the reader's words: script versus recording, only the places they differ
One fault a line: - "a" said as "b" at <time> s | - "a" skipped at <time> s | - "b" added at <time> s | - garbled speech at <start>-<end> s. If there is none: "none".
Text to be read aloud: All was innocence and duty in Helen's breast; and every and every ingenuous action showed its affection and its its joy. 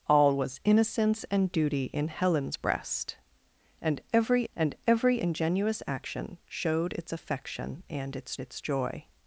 none